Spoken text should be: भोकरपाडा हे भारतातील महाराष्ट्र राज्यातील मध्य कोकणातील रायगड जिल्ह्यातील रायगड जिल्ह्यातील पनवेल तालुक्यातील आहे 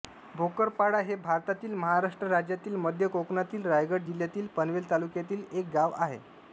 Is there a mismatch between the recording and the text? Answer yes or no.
yes